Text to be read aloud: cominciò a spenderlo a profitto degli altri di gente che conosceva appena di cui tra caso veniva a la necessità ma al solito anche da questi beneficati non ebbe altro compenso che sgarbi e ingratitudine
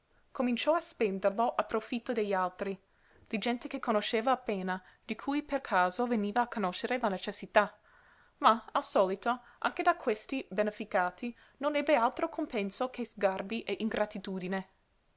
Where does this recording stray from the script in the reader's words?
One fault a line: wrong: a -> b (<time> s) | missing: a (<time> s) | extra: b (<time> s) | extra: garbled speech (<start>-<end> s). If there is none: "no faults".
wrong: tra -> per (5.4 s)
extra: conoscere (6.5 s)